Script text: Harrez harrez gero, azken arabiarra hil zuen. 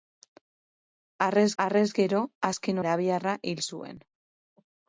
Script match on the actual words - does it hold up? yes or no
yes